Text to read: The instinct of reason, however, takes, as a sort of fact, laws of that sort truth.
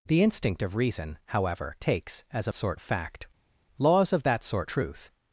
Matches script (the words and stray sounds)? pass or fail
pass